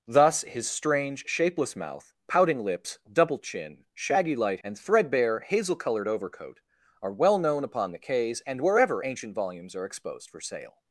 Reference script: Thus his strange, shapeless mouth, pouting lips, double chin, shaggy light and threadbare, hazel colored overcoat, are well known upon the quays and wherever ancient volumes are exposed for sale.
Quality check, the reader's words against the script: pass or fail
pass